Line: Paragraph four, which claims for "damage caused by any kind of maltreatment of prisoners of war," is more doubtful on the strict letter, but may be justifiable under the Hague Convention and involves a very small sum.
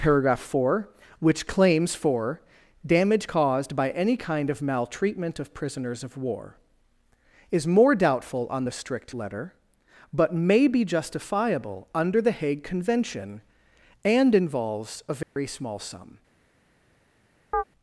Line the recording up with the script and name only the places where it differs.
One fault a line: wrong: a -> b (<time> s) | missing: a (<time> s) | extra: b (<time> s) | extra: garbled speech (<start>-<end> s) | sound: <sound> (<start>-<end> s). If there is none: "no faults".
sound: dropout (15.2-15.4 s)
sound: chirp (17.5-17.6 s)